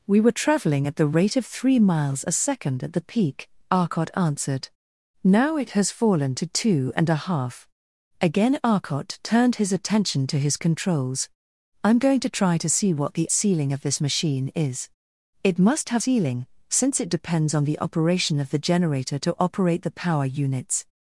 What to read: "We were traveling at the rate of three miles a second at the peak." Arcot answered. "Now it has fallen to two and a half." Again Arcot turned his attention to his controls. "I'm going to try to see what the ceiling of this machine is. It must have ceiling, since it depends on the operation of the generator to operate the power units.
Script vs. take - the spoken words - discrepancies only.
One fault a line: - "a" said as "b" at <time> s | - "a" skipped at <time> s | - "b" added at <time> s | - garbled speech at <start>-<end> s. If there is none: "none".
none